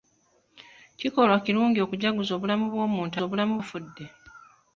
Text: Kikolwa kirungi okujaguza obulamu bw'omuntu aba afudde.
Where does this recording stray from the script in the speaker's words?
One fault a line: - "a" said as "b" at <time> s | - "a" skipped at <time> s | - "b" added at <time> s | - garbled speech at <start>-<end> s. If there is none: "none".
- "aba" said as "obulamu" at 3.2 s